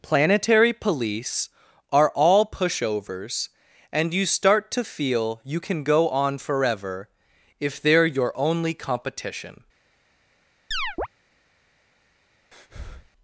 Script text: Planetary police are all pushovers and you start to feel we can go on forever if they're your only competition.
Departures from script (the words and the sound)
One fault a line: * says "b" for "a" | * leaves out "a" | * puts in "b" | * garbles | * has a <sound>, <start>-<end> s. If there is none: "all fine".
* says "you" for "we"
* has a chirp, 10.7-11.1 s
* has a breath, 12.5-13.1 s